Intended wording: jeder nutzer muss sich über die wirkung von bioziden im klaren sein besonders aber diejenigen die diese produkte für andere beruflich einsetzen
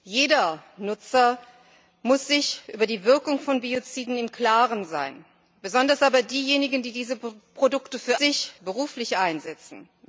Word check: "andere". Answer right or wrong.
wrong